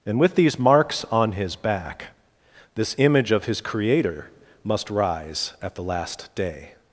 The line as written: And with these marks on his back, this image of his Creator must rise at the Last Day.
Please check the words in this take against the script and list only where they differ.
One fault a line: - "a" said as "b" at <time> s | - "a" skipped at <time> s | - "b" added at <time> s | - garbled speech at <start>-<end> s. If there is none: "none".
none